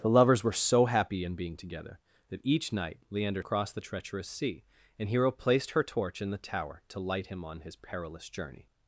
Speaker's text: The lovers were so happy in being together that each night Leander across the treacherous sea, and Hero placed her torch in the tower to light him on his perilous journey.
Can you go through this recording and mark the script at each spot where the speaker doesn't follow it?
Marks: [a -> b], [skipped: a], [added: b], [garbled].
The lovers were so happy in being together that each night Leander across the treacherous sea, and Hero placed her torch in the tower to light him on his perilous journey.